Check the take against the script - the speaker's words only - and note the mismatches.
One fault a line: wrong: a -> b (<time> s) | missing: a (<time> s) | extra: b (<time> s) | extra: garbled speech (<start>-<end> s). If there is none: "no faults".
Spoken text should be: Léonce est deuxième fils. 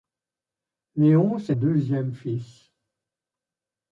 no faults